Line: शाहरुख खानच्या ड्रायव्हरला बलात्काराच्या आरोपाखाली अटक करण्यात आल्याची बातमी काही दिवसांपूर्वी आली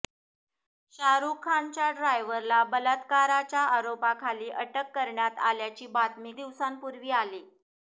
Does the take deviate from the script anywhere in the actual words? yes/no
yes